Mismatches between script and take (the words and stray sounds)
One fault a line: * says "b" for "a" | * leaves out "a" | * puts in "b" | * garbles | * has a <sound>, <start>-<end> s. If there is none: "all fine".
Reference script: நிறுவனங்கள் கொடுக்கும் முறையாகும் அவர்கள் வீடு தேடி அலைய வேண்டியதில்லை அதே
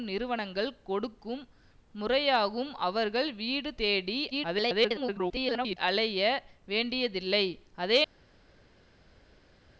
* garbles